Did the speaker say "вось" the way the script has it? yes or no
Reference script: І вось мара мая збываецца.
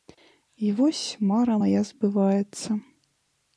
yes